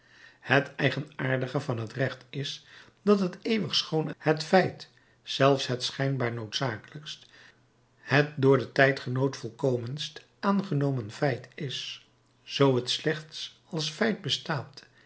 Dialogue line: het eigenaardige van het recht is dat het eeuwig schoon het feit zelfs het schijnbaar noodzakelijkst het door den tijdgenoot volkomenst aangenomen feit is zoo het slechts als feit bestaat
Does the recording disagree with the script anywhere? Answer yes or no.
no